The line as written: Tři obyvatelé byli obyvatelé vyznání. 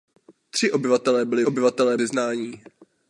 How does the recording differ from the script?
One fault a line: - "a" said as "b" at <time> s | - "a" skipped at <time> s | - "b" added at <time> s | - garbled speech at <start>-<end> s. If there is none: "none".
none